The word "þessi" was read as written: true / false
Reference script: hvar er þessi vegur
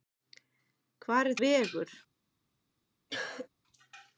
false